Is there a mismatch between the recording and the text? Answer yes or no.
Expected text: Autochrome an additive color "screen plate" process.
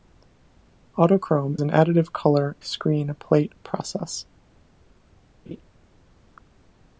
no